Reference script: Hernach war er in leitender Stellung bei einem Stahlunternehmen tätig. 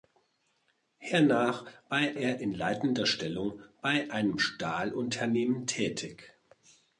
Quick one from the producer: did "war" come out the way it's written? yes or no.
no